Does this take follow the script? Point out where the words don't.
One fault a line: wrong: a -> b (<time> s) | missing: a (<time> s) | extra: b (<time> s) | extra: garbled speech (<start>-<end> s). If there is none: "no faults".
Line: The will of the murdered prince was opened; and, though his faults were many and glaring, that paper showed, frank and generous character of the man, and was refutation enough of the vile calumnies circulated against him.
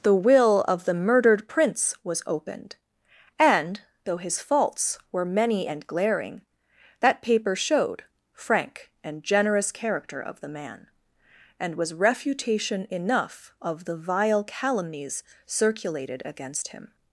no faults